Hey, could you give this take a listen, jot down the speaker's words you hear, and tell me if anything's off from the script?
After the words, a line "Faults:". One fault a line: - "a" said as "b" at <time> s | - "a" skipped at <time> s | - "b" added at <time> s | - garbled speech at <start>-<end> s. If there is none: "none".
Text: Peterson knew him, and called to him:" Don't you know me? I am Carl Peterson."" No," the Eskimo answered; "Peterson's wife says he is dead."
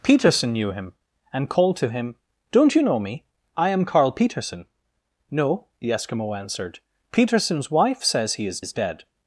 Peterson knew him, and called to him:" Don't you know me? I am Carl Peterson."" No," the Eskimo answered; "Peterson's wife says he is is dead."
Faults:
- "is" added at 8.6 s